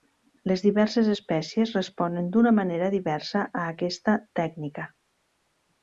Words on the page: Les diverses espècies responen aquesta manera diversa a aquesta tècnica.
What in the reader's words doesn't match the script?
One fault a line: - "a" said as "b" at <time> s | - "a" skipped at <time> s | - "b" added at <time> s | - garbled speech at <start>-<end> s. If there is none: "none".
- "aquesta" said as "d'una" at 2.4 s